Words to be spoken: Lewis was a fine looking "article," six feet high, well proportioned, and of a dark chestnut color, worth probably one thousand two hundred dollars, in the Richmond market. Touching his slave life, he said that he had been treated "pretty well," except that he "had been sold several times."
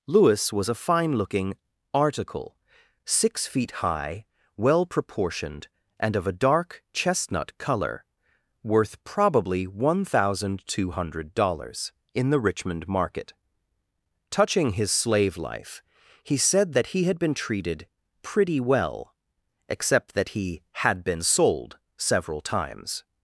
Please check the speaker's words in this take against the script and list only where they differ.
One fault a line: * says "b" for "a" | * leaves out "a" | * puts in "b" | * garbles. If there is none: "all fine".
all fine